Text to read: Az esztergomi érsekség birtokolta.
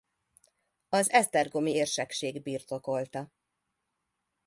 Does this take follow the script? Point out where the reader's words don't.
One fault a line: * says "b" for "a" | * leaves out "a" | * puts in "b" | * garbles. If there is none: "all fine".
all fine